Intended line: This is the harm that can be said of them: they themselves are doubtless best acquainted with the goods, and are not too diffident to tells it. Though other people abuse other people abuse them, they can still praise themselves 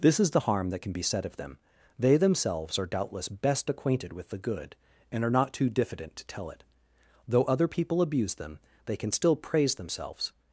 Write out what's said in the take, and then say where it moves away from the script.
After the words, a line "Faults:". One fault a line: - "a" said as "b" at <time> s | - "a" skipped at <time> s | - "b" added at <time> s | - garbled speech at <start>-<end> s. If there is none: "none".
This is the harm that can be said of them: they themselves are doubtless best acquainted with the good, and are not too diffident to tell it. Though other people abuse them, they can still praise themselves
Faults:
- "goods" said as "good" at 4.4 s
- "tells" said as "tell" at 6.2 s
- "other people abuse" skipped at 8.3 s